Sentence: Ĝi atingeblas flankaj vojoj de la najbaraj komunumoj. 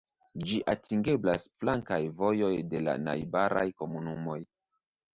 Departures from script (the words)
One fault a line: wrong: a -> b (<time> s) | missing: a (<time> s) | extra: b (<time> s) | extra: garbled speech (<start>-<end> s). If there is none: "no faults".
no faults